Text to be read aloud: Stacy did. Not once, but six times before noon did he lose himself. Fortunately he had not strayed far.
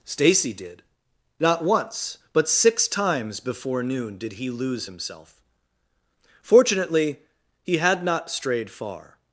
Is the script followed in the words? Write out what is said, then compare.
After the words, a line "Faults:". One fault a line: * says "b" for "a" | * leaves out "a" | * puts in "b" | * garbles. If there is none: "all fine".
Stacy did. Not once, but six times before noon did he lose himself. Fortunately he had not strayed far.
Faults:
all fine